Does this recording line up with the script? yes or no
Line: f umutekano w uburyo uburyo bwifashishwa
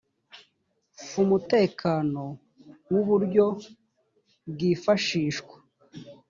no